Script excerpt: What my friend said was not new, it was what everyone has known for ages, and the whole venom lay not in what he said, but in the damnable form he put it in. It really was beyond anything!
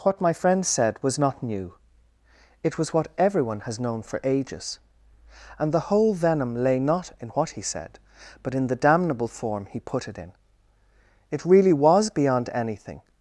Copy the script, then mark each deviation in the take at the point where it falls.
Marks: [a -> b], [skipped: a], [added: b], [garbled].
What my friend said was not new, it was what everyone has known for ages, and the whole venom lay not in what he said, but in the damnable form he put it in. It really was beyond anything!